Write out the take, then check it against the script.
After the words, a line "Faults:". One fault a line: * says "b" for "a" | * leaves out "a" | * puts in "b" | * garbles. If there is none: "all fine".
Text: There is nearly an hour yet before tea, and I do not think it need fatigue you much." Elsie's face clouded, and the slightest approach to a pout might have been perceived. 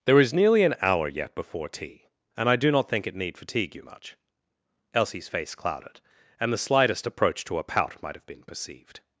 There is nearly an hour yet before tea, and I do not think it need fatigue you much." Elsie's face clouded, and the slightest approach to a pout might have been perceived.
Faults:
all fine